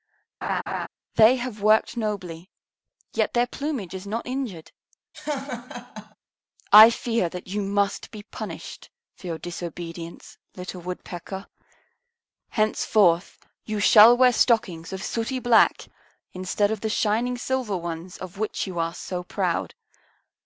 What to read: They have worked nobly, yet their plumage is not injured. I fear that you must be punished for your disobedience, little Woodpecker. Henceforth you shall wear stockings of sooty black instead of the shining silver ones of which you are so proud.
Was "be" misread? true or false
false